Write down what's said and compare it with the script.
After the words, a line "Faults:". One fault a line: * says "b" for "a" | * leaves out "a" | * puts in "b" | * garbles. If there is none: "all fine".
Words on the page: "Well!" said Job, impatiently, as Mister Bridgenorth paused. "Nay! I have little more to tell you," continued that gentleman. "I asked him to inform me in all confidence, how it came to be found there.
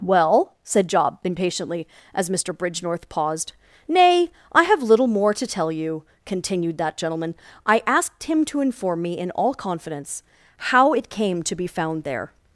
"Well!" said Job, impatiently, as Mister Bridgenorth paused. "Nay! I have little more to tell you," continued that gentleman. "I asked him to inform me in all confidence, how it came to be found there.
Faults:
all fine